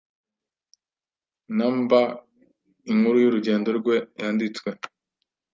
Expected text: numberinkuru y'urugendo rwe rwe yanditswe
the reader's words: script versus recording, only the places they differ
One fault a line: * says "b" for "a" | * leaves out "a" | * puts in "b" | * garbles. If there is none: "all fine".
* leaves out "rwe"